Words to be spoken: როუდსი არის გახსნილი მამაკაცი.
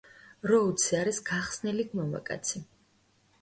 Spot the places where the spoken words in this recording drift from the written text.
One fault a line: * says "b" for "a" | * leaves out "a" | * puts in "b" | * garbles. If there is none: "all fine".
all fine